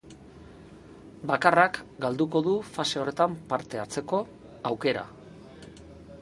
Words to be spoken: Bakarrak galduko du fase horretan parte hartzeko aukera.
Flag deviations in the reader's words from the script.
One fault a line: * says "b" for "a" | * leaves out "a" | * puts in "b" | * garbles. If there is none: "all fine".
all fine